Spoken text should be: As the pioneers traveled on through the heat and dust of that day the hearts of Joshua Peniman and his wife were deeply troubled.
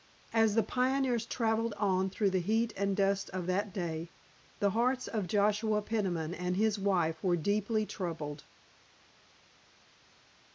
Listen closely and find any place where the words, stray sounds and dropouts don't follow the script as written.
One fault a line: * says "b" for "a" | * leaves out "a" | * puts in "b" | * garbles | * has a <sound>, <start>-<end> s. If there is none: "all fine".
all fine